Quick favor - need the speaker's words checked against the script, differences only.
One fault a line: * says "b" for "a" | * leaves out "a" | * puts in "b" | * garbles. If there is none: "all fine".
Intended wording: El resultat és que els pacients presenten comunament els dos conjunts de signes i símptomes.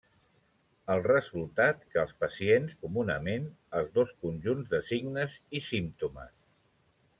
* leaves out "és"
* leaves out "presenten"